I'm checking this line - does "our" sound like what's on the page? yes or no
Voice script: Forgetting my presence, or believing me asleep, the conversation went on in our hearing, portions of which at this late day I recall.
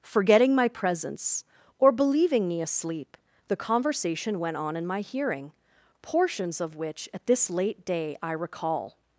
no